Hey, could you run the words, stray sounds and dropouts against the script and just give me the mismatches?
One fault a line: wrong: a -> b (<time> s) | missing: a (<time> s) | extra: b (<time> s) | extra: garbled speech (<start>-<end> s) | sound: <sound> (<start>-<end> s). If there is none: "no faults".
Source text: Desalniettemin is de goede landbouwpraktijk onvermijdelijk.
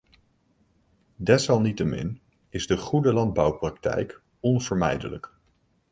no faults